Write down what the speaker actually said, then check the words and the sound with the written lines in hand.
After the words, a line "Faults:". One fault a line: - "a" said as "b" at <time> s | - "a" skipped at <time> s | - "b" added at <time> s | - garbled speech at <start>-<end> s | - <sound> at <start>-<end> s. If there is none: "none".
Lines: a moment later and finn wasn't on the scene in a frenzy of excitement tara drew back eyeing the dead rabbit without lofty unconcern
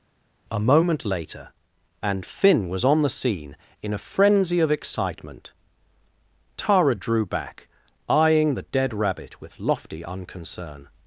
a moment later and finn was on the scene in a frenzy of excitement tara drew back eyeing the dead rabbit with lofty unconcern
Faults:
- "wasn't" said as "was" at 2.7 s
- "without" said as "with" at 9.4 s